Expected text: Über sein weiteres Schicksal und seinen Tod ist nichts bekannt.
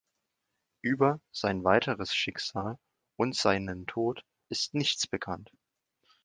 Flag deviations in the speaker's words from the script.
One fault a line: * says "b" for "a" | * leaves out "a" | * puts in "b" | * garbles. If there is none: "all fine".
all fine